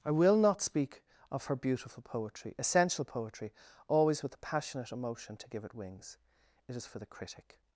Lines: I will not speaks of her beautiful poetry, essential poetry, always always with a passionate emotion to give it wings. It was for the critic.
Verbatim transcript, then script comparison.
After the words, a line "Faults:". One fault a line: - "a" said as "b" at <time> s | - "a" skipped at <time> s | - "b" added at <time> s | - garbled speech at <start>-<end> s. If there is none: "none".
I will not speak of her beautiful poetry, essential poetry, always with a passionate emotion to give it wings. It is for the critic.
Faults:
- "speaks" said as "speak" at 0.6 s
- "always" skipped at 4.2 s
- "was" said as "is" at 6.8 s